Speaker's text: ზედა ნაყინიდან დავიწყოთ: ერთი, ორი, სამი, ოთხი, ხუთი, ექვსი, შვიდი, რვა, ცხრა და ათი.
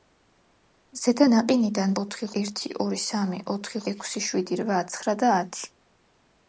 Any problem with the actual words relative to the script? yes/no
yes